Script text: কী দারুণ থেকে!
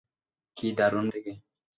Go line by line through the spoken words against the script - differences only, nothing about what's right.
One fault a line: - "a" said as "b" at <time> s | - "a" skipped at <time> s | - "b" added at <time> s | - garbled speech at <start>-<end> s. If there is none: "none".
none